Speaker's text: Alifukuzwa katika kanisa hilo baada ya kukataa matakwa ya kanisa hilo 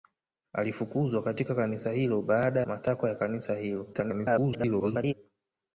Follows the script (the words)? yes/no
no